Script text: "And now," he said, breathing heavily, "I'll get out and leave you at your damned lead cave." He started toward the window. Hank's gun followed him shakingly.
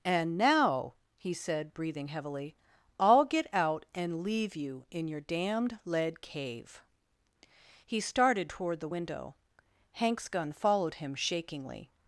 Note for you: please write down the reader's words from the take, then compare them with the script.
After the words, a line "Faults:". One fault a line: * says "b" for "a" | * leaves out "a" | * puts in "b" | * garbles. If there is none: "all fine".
"And now," he said, breathing heavily, "I'll get out and leave you in your damned lead cave." He started toward the window. Hank's gun followed him shakingly.
Faults:
* says "in" for "at"